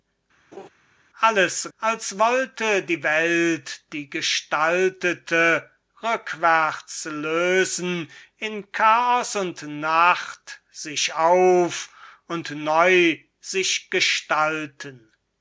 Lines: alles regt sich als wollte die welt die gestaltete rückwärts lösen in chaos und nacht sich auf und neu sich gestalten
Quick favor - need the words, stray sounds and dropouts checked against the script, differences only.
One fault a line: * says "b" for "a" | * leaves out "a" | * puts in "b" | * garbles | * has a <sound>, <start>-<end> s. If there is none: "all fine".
* has a laugh, 0.5-0.7 s
* leaves out "regt sich"